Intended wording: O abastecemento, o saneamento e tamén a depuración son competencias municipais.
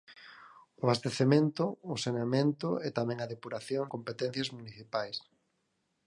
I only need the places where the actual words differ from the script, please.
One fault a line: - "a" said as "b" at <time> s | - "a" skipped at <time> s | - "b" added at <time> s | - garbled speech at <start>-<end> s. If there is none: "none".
- "son" skipped at 3.9 s